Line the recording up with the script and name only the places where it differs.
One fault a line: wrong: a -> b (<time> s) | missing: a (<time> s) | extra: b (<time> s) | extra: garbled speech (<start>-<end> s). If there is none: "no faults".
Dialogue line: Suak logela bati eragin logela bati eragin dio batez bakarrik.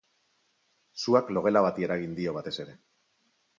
missing: logela bati eragin (2.2 s)
wrong: bakarrik -> ere (2.7 s)